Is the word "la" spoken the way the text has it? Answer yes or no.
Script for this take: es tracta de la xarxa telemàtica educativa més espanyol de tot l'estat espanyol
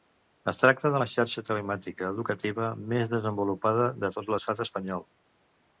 yes